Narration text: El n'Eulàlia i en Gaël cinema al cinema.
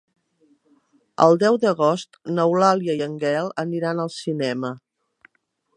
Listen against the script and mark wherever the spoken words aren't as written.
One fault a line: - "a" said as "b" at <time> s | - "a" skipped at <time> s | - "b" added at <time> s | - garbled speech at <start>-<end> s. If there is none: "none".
- "deu d'agost" added at 1.4 s
- "cinema" said as "aniran" at 3.7 s